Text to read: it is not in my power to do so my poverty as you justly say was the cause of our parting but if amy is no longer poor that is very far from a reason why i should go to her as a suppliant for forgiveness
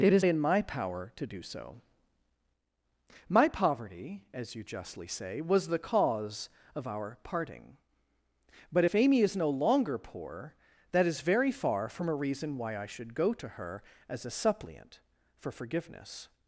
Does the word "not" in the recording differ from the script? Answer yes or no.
yes